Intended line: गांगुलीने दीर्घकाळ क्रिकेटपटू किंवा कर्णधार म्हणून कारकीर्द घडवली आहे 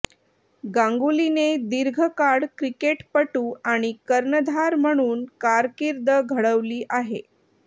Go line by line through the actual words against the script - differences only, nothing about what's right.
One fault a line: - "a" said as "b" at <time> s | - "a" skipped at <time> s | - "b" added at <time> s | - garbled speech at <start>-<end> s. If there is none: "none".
- "किंवा" said as "आणि" at 3.7 s